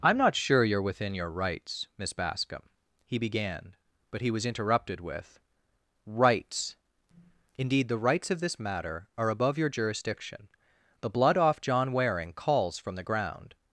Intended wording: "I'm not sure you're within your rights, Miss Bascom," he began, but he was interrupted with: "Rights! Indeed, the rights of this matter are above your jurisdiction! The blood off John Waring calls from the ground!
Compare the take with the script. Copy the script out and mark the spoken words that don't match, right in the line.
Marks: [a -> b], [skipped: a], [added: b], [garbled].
"I'm not sure you're within your rights, Miss Bascom," he began, but he was interrupted with: "Rights! Indeed, the rights of this matter are above your jurisdiction! The blood off John Waring calls from the ground!